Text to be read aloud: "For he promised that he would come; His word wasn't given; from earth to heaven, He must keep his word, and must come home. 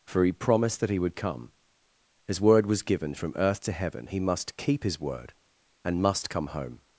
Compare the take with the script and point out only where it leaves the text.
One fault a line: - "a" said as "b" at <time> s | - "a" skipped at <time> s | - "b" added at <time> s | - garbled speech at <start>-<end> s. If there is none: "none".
- "wasn't" said as "was" at 2.6 s